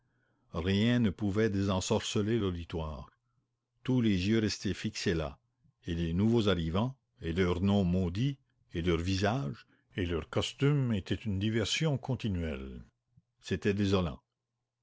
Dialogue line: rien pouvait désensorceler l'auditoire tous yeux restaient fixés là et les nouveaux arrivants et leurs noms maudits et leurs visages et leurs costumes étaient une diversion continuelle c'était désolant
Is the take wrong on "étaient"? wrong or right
right